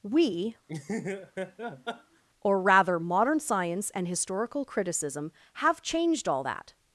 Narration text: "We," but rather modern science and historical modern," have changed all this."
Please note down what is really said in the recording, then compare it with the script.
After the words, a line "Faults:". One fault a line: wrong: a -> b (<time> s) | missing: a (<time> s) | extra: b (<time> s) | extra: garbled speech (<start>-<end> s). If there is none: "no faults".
"We," or rather modern science and historical criticism," have changed all that."
Faults:
wrong: but -> or (2.4 s)
wrong: modern -> criticism (4.6 s)
wrong: this -> that (6.4 s)